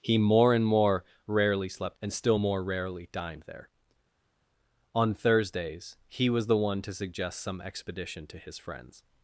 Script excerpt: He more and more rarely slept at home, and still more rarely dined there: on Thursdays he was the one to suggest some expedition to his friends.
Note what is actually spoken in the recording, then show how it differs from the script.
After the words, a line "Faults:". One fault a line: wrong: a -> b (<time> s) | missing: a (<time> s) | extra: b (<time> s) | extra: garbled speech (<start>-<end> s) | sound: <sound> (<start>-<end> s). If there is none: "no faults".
He more and more rarely slept and still more rarely dined there: on Thursdays he was the one to suggest some expedition to his friends.
Faults:
missing: at home (2.0 s)